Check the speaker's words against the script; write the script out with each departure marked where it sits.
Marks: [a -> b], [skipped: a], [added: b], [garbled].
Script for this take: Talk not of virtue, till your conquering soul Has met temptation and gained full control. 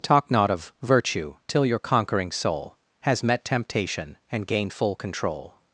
Talk not of virtue, till your conquering soul Has met temptation and gained full control.